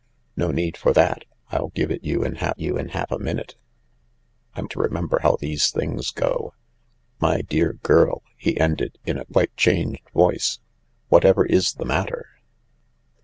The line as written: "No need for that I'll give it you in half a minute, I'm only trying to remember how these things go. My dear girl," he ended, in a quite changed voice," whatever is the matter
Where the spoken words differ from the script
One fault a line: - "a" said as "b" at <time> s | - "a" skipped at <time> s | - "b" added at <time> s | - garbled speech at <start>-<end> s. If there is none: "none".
- "you in half" added at 2.6 s
- "only trying" skipped at 4.7 s